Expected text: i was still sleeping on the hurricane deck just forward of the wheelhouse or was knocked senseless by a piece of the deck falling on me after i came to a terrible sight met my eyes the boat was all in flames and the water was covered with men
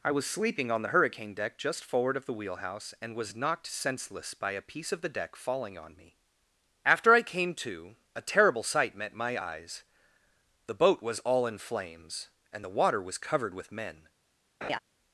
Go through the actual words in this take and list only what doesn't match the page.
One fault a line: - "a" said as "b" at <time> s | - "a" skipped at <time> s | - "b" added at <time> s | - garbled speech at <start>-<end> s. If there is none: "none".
- "still" skipped at 0.2 s
- "or" said as "and" at 3.0 s